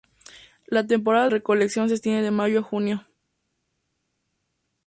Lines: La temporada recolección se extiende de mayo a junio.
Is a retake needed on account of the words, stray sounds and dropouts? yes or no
no